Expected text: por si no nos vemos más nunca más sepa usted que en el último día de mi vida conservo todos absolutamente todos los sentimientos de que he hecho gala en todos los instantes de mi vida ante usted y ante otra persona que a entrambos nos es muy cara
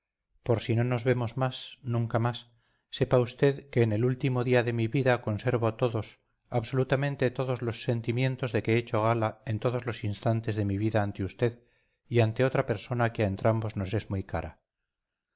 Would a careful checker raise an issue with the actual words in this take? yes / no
no